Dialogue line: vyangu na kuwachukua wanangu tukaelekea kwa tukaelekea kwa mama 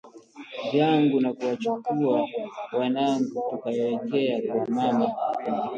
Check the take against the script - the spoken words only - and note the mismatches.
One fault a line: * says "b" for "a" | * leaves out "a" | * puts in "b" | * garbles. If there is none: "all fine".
* leaves out "tukaelekea kwa"